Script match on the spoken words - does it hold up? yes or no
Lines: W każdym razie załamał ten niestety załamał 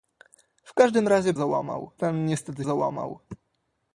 yes